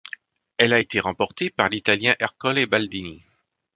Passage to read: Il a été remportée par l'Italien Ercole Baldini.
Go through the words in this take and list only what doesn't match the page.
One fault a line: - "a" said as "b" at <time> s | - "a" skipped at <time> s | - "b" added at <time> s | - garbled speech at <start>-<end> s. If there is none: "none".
- "Il" said as "Elle" at 0.6 s